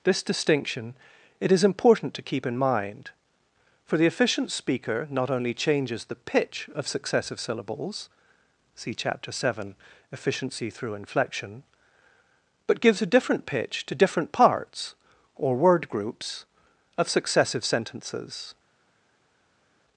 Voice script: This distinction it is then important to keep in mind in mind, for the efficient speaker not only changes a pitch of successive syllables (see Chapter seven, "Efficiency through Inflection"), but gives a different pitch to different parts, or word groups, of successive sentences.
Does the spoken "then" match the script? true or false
false